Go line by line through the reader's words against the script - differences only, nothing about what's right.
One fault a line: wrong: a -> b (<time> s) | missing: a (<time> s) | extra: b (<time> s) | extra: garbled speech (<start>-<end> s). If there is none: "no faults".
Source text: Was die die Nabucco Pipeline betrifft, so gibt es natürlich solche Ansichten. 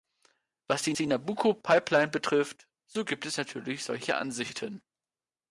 no faults